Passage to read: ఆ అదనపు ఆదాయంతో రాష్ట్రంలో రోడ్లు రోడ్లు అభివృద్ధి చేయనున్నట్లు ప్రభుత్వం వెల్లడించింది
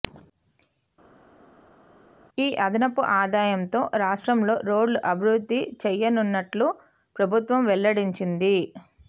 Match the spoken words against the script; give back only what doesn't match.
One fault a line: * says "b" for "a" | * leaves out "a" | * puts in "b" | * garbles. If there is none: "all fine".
* says "ఈ" for "ఆ"
* leaves out "రోడ్లు"